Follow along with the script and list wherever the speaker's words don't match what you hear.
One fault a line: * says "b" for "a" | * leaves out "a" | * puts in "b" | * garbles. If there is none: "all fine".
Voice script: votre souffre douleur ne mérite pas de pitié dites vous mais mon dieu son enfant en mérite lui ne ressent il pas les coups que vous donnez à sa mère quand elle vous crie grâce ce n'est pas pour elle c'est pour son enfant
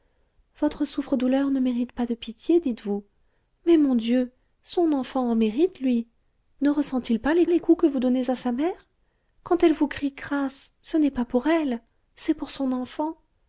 * puts in "les"